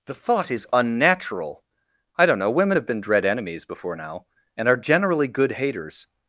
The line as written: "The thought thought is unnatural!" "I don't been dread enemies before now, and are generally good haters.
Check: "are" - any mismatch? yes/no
no